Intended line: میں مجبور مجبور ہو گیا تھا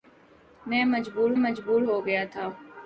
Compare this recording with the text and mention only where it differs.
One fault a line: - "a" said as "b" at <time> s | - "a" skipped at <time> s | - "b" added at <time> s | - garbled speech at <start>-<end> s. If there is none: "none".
none